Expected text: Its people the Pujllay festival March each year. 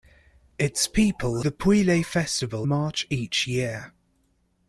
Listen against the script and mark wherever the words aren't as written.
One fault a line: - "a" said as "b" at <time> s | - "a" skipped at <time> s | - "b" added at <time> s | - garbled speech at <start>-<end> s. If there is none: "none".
none